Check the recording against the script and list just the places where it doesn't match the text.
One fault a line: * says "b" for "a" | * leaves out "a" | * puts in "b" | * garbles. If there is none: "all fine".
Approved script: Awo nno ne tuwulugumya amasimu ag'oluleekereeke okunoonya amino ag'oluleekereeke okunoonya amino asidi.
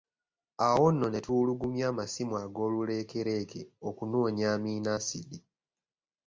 * leaves out "ag'oluleekereeke okunoonya amino"